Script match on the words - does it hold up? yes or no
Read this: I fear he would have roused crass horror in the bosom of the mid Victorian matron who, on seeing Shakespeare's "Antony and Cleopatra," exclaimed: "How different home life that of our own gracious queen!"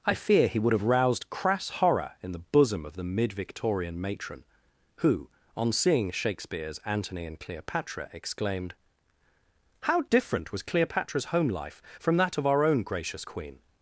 no